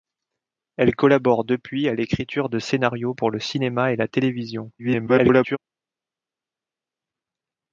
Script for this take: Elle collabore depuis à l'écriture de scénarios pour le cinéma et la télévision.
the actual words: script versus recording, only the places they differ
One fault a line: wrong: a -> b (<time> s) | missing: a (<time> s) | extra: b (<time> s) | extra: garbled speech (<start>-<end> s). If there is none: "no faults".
extra: garbled speech (4.8-5.6 s)